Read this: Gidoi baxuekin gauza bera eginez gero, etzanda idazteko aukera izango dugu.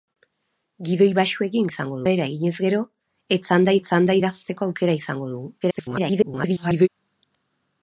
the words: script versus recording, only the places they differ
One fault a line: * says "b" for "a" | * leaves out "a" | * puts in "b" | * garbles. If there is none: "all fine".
* says "izango" for "gauza"
* puts in "etzanda"
* garbles